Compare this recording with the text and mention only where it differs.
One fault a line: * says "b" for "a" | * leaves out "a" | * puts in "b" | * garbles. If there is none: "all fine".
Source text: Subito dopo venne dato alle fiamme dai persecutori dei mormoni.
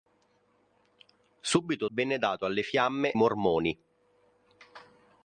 * leaves out "dopo"
* leaves out "dai persecutori dei"